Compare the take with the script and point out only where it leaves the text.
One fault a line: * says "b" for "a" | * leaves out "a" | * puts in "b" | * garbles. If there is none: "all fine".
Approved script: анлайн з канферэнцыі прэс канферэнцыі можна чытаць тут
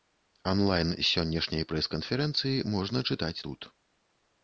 * says "сённяшняй" for "канферэнцыі"